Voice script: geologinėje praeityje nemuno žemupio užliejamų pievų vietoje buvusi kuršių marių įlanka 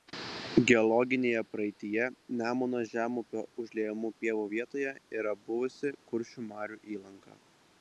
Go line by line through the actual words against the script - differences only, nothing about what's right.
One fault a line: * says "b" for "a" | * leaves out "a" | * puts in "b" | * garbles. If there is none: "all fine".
* puts in "yra"